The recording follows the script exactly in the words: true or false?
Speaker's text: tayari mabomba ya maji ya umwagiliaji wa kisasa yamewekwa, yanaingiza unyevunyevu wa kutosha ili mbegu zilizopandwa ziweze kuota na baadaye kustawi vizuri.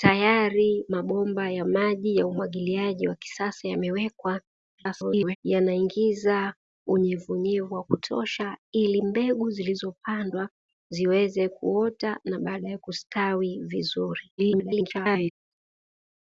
false